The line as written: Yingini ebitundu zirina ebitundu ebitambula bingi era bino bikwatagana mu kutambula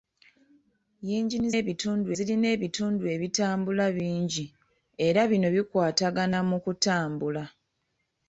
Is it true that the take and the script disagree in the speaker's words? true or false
false